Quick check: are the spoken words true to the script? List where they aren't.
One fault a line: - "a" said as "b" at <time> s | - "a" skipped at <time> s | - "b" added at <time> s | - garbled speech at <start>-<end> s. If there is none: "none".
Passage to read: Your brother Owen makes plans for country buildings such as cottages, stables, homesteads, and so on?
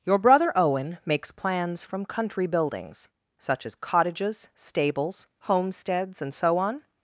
- "for" said as "from" at 1.8 s